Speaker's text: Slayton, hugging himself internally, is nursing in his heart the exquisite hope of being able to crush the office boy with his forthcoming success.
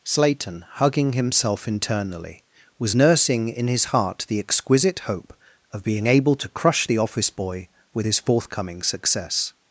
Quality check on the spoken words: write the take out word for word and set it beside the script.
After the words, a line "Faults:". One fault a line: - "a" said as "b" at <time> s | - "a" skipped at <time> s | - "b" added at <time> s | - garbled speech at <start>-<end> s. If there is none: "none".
Slayton, hugging himself internally, was nursing in his heart the exquisite hope of being able to crush the office boy with his forthcoming success.
Faults:
- "is" said as "was" at 2.8 s